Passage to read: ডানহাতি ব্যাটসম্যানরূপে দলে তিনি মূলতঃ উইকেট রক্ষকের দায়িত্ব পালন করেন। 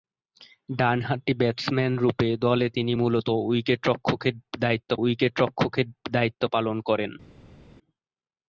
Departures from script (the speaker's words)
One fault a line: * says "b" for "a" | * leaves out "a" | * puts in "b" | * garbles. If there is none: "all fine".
* puts in "উইকেট রক্ষকের দায়িত্ব"